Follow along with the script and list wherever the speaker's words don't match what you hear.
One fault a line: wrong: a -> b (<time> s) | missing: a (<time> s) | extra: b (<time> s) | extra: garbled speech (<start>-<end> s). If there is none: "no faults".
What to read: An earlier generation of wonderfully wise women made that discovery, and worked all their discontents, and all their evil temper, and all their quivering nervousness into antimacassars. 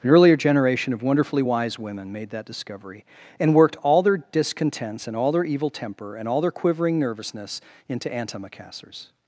no faults